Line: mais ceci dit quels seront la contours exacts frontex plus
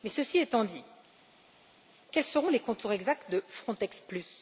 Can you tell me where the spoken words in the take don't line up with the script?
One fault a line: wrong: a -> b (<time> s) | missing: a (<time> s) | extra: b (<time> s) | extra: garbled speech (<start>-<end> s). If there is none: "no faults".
extra: étant (0.4 s)
wrong: la -> les (2.5 s)
extra: de (3.3 s)